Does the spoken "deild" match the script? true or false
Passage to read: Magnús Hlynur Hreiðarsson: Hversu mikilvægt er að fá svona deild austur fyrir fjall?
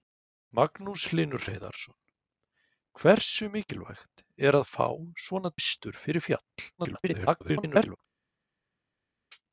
false